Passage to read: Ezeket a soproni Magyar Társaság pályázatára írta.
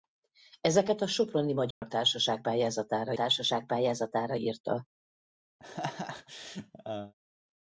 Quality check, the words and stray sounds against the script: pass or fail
fail